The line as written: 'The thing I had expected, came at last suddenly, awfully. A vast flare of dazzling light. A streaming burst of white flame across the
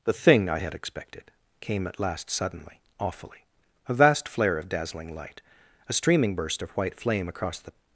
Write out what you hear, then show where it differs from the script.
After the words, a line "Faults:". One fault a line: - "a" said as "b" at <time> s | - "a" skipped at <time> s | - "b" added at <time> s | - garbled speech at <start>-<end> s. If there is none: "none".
'The thing I had expected, came at last suddenly, awfully. A vast flare of dazzling light. A streaming burst of white flame across the
Faults:
none